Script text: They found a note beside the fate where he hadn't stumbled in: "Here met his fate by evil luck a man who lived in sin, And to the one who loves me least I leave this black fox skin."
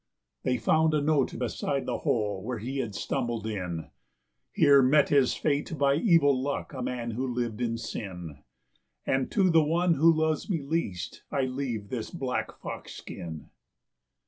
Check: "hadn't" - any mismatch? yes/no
yes